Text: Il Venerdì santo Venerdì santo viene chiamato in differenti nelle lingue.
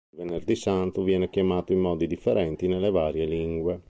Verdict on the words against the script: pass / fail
fail